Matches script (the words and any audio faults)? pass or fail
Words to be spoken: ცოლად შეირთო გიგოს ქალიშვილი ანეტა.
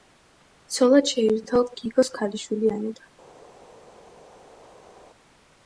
pass